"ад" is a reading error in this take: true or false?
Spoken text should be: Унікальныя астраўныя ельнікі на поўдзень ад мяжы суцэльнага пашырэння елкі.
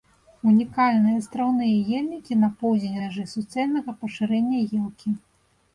true